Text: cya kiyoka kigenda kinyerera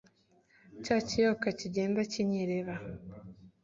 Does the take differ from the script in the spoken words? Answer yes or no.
no